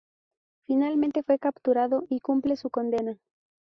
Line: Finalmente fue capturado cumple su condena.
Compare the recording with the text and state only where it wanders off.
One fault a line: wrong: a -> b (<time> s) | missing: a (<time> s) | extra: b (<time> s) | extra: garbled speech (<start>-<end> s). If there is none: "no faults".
extra: y (2.1 s)